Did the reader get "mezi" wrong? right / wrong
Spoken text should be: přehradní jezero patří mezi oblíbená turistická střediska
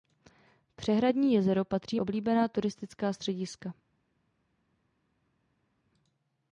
wrong